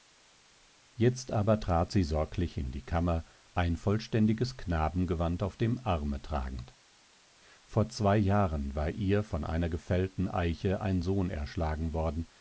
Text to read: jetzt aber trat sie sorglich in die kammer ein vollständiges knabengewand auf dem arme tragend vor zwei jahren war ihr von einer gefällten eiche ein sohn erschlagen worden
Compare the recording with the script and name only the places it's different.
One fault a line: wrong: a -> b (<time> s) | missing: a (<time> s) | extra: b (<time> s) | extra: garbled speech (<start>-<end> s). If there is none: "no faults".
no faults